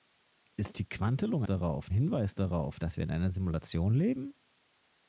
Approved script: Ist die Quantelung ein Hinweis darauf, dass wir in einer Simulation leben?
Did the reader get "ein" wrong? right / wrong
wrong